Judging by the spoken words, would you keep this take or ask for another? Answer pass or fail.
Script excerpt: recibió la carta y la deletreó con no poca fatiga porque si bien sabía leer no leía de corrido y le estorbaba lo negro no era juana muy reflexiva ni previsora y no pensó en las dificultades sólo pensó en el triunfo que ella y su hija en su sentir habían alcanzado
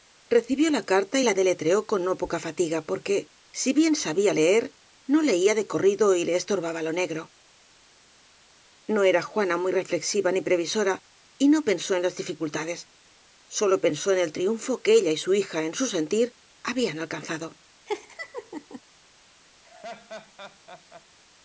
pass